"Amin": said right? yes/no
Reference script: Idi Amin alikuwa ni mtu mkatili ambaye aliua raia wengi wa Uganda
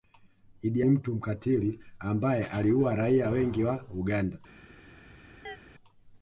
no